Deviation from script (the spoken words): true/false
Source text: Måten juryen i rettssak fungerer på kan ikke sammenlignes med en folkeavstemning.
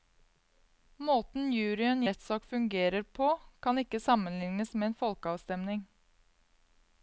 false